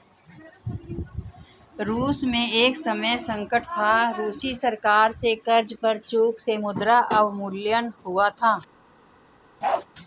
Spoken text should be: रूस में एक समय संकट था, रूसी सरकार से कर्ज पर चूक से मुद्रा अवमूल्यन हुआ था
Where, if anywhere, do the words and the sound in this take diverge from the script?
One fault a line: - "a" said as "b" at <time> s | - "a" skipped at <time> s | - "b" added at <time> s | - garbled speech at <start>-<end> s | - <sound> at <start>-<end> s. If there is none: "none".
- bark at 9.6-9.9 s